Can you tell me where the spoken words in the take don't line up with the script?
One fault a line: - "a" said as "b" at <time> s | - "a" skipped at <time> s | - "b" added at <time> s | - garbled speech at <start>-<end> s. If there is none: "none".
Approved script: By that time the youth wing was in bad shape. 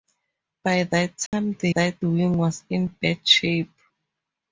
- "youth" said as "that" at 1.7 s